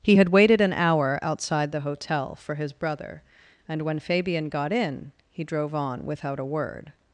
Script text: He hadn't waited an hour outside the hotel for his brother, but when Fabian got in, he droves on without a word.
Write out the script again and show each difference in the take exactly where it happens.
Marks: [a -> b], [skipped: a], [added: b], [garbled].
He [hadn't -> had] waited an hour outside the hotel for his brother, [but -> and] when Fabian got in, he [droves -> drove] on without a word.